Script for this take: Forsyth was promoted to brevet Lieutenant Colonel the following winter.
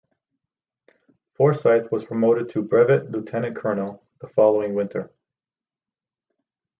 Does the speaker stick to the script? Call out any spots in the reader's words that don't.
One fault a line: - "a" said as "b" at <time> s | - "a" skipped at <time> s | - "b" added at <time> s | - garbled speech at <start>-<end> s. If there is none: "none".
none